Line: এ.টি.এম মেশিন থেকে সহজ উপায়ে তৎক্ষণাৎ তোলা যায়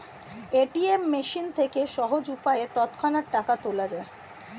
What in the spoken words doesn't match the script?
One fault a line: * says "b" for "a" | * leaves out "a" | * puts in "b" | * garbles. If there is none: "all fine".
* puts in "টাকা"